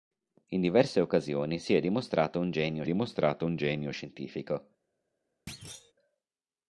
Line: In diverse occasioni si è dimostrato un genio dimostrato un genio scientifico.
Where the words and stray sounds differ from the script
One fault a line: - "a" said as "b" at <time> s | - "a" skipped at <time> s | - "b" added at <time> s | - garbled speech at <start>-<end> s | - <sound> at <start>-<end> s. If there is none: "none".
- thud at 5.5-5.9 s